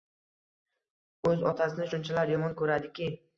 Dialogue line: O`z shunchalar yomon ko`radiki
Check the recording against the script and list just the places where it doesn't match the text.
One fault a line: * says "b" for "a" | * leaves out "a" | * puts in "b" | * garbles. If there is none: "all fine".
* puts in "otasini"